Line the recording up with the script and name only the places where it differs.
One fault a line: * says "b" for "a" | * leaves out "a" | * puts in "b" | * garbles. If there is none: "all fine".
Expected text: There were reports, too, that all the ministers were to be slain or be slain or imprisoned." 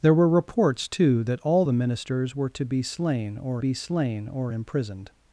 all fine